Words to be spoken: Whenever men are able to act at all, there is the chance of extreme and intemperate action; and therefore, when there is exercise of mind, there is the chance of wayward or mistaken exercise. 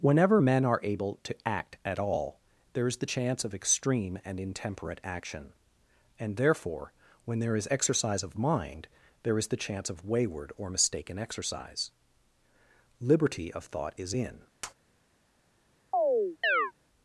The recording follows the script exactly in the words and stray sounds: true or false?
false